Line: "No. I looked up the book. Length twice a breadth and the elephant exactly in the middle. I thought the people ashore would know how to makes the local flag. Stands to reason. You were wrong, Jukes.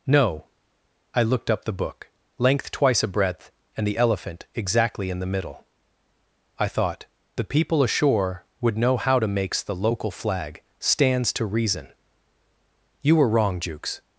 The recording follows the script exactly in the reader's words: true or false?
true